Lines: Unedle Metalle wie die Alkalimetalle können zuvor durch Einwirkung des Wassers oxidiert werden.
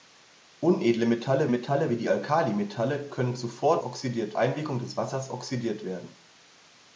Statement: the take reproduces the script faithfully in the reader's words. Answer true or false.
false